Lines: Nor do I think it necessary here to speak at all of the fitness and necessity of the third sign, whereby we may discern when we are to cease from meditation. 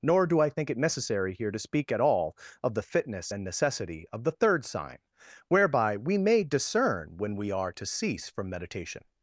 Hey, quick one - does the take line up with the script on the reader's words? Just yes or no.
yes